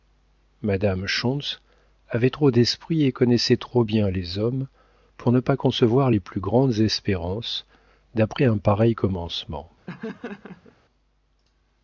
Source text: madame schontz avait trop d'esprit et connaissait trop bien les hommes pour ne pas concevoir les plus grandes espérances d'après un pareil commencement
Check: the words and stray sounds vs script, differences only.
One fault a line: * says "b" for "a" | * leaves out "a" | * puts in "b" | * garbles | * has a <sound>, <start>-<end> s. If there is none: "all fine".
* has a laugh, 9.9-10.8 s